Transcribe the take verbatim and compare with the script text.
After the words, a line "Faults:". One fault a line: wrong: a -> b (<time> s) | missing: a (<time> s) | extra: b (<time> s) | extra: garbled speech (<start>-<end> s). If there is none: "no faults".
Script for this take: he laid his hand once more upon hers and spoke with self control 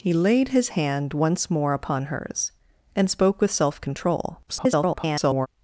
he laid his hand once more upon hers and spoke with self control [garbled]
Faults:
extra: garbled speech (4.5-5.5 s)